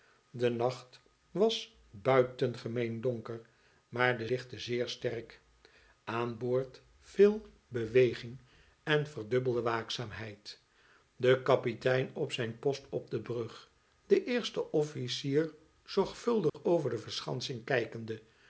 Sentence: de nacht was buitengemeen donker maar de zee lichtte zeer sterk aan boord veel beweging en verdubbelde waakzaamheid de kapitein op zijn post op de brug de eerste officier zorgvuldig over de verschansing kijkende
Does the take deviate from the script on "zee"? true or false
true